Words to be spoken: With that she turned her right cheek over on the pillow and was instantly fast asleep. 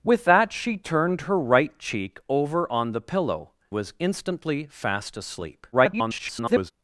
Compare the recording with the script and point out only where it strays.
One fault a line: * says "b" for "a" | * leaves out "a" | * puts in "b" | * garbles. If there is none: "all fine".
* leaves out "and"
* garbles